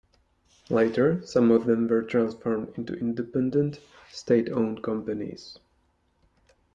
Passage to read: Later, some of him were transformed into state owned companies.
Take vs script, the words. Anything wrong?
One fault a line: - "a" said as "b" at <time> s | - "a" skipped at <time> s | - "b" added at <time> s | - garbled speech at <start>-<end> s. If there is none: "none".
- "him" said as "them" at 1.6 s
- "independent" added at 3.0 s